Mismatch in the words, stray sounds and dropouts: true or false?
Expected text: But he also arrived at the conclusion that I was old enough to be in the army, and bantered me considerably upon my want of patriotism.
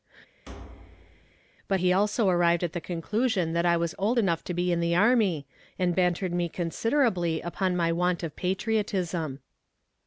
true